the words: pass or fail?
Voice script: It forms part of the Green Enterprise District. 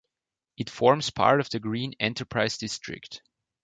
pass